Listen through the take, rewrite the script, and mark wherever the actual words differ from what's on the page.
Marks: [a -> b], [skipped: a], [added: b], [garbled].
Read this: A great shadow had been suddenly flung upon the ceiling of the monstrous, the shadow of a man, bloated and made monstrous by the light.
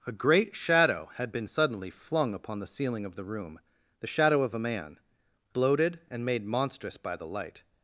A great shadow had been suddenly flung upon the ceiling of the [monstrous, -> room] the shadow of a man, bloated and made monstrous by the light.